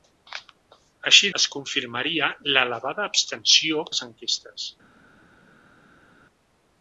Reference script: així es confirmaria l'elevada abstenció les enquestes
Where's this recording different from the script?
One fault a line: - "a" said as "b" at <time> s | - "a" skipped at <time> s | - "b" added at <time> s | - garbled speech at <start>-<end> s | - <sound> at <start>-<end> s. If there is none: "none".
none